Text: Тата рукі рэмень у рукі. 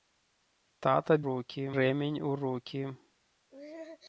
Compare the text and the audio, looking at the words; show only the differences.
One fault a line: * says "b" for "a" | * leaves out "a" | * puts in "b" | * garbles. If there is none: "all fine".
all fine